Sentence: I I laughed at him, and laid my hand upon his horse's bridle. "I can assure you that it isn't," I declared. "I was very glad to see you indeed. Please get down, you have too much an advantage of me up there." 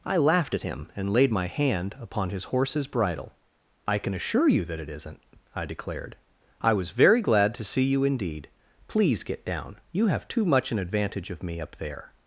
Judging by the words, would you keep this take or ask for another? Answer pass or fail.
fail